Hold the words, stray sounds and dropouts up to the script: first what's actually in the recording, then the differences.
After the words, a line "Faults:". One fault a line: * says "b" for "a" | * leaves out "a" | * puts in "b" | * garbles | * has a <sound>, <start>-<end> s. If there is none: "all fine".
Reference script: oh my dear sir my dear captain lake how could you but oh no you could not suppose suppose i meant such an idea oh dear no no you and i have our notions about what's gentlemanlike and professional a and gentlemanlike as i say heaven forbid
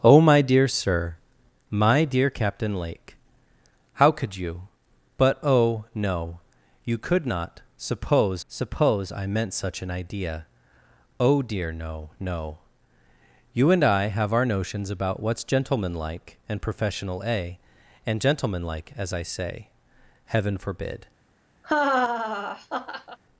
oh my dear sir my dear captain lake how could you but oh no you could not suppose suppose i meant such an idea oh dear no no you and i have our notions about what's gentlemanlike and professional a and gentlemanlike as i say heaven forbid
Faults:
* has a laugh, 21.6-23.2 s